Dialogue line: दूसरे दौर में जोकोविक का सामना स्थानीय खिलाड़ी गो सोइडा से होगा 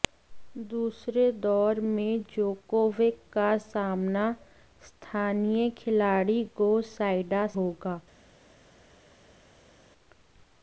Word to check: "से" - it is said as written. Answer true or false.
false